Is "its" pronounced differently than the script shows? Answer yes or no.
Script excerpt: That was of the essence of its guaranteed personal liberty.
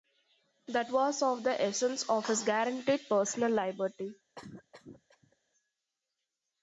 yes